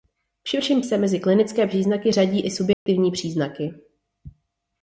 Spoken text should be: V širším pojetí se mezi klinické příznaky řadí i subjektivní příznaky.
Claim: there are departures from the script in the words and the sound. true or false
true